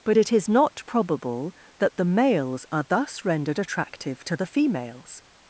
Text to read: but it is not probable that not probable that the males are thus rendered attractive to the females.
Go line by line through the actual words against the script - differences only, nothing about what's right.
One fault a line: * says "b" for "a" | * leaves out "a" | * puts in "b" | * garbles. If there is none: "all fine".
* leaves out "not probable that"